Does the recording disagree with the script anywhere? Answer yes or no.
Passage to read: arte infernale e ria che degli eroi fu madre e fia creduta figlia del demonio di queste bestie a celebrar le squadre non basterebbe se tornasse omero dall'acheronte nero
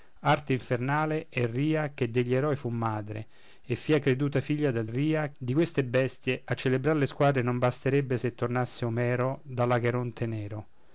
yes